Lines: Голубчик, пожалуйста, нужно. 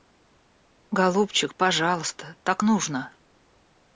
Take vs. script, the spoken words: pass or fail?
fail